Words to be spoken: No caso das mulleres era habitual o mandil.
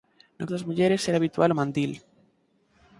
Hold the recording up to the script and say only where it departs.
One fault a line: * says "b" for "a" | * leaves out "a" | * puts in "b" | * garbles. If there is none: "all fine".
* leaves out "caso"